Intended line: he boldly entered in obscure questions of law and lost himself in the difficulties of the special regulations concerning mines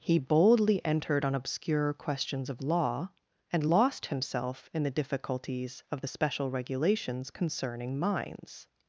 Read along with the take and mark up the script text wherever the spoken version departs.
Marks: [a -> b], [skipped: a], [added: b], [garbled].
he boldly entered [in -> on] obscure questions of law and lost himself in the difficulties of the special regulations concerning mines